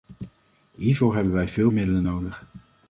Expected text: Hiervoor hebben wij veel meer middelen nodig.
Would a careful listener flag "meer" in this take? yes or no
yes